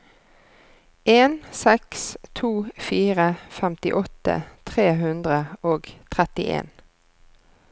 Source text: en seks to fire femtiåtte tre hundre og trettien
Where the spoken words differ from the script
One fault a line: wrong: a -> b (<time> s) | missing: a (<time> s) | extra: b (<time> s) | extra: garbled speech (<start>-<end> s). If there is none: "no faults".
no faults